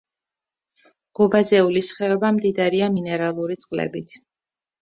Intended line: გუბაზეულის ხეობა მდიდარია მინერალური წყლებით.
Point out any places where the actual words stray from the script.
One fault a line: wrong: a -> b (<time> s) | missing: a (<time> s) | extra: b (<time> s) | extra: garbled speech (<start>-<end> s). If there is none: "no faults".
no faults